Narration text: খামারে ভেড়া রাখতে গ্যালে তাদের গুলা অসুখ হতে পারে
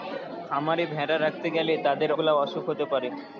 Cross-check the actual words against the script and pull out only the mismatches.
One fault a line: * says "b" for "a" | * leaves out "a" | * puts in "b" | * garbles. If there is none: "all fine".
all fine